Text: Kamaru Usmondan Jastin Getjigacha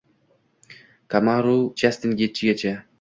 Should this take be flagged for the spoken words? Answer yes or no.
yes